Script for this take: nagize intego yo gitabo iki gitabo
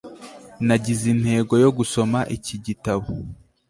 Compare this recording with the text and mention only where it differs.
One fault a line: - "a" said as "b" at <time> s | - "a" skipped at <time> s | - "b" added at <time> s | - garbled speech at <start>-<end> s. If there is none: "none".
- "gitabo" said as "gusoma" at 1.8 s